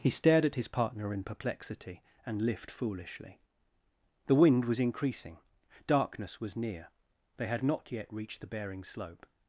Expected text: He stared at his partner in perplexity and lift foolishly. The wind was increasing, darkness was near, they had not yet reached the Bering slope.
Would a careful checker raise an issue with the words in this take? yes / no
no